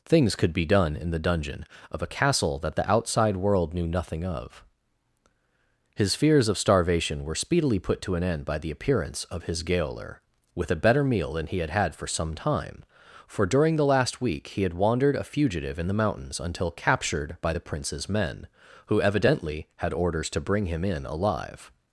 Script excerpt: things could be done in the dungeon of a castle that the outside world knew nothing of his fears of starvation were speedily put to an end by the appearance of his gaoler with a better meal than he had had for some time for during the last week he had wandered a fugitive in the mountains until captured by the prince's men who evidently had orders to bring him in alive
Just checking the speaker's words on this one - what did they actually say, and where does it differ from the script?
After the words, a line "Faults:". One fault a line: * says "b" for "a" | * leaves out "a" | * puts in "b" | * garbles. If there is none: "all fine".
things could be done in the dungeon of a castle that the outside world knew nothing of his fears of starvation were speedily put to an end by the appearance of his gaoler with a better meal than he had had for some time for during the last week he had wandered a fugitive in the mountains until captured by the prince's men who evidently had orders to bring him in alive
Faults:
all fine